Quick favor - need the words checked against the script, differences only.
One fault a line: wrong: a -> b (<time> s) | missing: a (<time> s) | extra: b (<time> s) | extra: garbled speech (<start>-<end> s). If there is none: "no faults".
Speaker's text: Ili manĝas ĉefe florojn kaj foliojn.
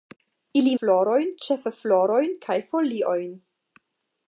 wrong: manĝas -> florojn (0.8 s)